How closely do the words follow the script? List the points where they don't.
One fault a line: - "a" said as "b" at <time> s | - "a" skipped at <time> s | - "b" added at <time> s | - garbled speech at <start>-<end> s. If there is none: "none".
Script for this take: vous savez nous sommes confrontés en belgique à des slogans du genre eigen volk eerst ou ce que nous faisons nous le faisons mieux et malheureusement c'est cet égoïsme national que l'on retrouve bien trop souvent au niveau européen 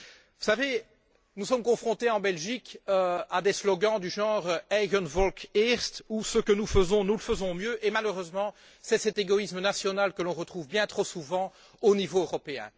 none